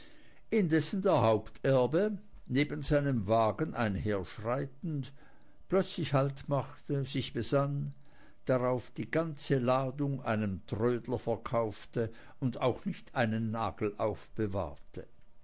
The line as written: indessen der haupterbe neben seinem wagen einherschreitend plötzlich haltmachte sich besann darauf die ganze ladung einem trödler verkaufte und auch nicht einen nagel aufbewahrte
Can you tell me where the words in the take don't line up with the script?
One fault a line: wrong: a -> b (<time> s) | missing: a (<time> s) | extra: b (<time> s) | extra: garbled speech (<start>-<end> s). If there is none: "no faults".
no faults